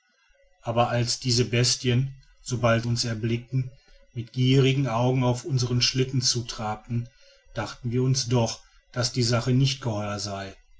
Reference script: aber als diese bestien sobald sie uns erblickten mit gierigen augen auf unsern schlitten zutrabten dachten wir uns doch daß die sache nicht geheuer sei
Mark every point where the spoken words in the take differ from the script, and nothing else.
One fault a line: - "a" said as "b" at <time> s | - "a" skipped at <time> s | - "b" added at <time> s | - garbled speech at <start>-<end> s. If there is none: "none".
- "sie" skipped at 2.9 s